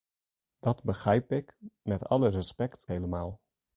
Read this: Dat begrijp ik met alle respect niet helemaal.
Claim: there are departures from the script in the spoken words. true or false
true